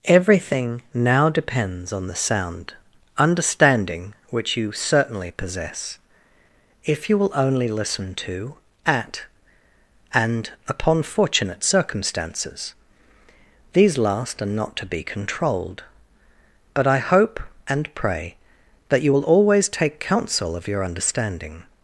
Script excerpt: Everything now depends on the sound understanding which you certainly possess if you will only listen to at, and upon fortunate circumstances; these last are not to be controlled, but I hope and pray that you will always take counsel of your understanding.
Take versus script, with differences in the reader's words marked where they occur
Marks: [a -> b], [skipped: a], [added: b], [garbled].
Everything now depends on the sound understanding which you certainly possess if you will only listen to at, and upon fortunate circumstances; these last are not to be controlled, but I hope and pray that you will always take counsel of your understanding.